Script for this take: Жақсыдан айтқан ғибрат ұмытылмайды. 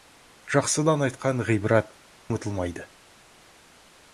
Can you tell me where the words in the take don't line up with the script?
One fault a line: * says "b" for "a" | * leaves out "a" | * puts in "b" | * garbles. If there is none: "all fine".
all fine